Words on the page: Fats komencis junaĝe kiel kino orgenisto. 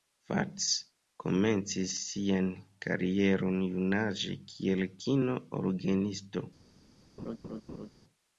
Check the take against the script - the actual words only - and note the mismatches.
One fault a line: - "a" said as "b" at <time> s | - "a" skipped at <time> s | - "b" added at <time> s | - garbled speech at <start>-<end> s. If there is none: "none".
- "sian karieron" added at 2.0 s